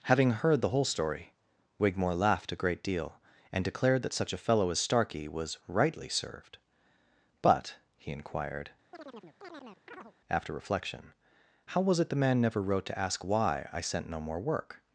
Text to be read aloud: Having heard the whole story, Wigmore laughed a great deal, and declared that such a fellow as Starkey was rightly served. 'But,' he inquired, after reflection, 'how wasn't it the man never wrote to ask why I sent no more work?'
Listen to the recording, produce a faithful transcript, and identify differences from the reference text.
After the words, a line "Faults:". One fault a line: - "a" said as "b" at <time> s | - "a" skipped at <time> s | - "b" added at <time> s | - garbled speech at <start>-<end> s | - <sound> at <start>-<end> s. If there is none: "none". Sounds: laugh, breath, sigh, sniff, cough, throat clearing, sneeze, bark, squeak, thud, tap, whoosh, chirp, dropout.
Having heard the whole story, Wigmore laughed a great deal, and declared that such a fellow as Starkey was rightly served. 'But,' he inquired, after reflection, 'how was it the man never wrote to ask why I sent no more work?'
Faults:
- chirp at 8.9-10.1 s
- "wasn't" said as "was" at 11.8 s